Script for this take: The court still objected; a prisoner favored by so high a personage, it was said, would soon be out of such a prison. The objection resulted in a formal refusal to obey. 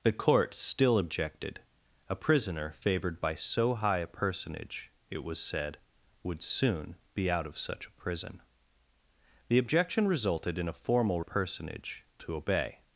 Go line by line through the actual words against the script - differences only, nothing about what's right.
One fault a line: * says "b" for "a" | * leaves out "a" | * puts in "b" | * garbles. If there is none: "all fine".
* says "personage" for "refusal"